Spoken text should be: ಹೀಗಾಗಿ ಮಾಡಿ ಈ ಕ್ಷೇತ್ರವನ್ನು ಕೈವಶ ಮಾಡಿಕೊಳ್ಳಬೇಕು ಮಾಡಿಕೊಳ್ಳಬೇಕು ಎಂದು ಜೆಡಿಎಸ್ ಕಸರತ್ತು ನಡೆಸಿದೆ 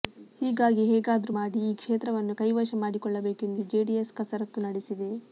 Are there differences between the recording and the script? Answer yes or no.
yes